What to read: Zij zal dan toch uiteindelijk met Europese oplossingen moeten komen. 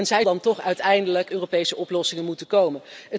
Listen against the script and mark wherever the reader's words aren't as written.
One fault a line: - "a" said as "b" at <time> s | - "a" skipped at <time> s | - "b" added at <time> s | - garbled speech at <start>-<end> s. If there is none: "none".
- "zal" skipped at 0.3 s
- "met" skipped at 1.3 s